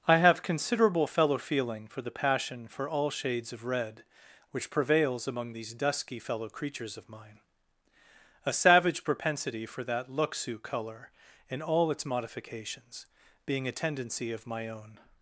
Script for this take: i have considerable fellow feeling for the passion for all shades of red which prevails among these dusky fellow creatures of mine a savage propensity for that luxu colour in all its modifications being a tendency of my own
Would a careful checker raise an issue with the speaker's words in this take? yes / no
no